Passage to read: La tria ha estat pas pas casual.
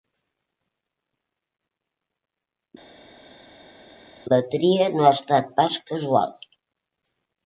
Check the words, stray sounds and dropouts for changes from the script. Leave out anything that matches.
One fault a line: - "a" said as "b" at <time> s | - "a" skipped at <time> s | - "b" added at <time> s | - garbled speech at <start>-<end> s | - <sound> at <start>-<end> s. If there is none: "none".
- "no" added at 4.9 s
- "pas" skipped at 5.8 s